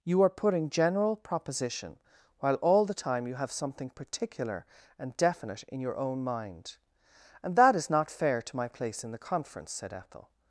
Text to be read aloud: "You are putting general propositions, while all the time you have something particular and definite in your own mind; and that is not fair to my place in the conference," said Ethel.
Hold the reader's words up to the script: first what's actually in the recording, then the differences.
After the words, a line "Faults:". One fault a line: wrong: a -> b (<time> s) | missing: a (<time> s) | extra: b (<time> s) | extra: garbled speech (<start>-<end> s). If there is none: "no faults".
"You are putting general proposition, while all the time you have something particular and definite in your own mind; and that is not fair to my place in the conference," said Ethel.
Faults:
wrong: propositions -> proposition (1.1 s)